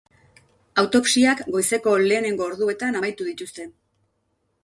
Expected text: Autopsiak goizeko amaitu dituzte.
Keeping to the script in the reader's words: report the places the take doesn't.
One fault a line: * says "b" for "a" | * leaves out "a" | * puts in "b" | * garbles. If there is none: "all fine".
* puts in "lehenengo orduetan"